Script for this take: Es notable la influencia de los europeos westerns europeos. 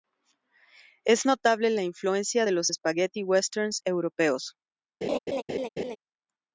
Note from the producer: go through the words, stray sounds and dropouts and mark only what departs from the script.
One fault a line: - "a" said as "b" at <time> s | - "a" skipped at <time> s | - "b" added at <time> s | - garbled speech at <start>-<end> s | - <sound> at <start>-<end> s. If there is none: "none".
- "europeos" said as "spaghetti" at 2.6 s
- laugh at 5.0-6.0 s